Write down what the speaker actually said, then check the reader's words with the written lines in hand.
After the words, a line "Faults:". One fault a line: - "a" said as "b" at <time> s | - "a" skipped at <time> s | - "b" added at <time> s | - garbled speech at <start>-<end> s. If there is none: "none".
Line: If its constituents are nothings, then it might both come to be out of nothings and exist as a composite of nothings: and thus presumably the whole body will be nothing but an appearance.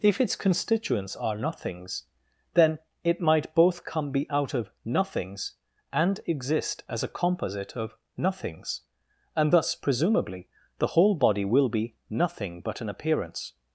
If its constituents are nothings, then it might both come be out of nothings and exist as a composite of nothings: and thus presumably the whole body will be nothing but an appearance.
Faults:
- "to" skipped at 4.1 s